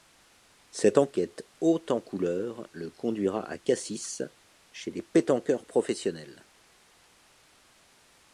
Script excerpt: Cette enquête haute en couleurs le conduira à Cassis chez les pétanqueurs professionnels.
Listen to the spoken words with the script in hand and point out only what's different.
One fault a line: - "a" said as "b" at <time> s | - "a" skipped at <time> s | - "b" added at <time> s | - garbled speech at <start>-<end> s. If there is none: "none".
none